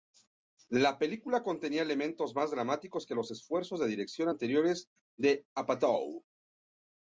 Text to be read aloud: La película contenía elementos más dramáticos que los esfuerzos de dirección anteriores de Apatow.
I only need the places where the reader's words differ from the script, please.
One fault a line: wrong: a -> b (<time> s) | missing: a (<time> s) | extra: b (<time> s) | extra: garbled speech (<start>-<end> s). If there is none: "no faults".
no faults